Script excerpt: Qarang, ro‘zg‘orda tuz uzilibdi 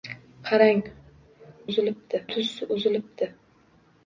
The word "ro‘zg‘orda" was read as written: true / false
false